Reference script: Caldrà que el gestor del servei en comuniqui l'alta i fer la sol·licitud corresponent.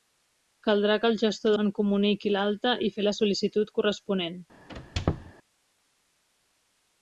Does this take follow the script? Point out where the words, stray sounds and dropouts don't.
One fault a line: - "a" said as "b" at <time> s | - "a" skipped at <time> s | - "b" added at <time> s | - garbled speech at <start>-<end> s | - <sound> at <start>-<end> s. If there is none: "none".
- "del servei" skipped at 1.5 s
- squeak at 4.7-5.3 s